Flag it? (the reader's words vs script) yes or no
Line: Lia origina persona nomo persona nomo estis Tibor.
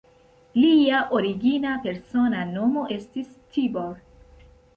yes